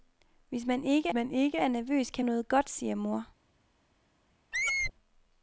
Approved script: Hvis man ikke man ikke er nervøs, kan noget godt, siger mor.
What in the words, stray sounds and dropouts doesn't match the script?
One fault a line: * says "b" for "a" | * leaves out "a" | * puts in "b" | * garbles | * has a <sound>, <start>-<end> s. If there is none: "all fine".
* has a squeak, 4.5-4.9 s